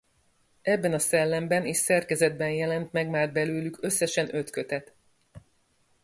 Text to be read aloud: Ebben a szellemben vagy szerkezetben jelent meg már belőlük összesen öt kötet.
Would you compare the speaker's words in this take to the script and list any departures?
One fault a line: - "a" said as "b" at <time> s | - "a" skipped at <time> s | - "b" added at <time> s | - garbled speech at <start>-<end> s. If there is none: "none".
- "vagy" said as "és" at 1.6 s